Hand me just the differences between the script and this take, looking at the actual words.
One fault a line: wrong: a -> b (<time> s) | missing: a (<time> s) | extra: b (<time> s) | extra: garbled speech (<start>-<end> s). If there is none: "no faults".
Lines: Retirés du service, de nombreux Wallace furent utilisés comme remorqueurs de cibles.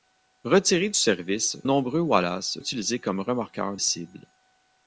missing: de (1.6 s)
missing: furent (2.6 s)
missing: de (3.8 s)